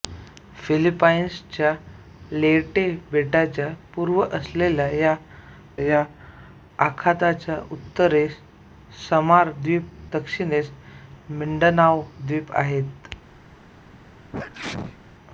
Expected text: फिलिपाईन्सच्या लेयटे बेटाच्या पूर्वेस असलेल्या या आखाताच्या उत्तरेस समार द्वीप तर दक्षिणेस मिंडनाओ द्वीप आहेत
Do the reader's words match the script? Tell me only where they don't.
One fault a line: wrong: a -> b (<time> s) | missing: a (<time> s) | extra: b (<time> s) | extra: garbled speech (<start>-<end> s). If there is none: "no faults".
extra: या (5.8 s)
missing: तर (9.9 s)